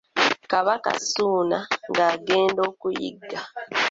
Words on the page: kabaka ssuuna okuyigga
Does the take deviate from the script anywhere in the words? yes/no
yes